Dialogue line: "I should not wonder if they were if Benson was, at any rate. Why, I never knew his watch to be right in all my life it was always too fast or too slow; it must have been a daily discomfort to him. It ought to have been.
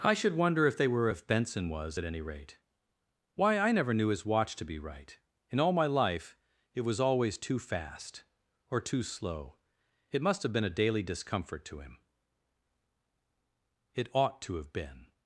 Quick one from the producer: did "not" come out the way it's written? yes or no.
no